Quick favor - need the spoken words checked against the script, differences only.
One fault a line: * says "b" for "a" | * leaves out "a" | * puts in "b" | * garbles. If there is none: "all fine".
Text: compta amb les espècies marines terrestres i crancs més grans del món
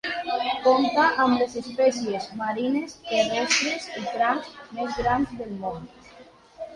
all fine